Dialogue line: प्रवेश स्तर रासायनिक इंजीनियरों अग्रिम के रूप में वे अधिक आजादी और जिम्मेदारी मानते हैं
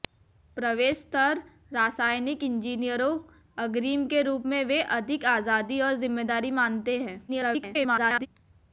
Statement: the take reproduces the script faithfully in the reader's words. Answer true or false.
false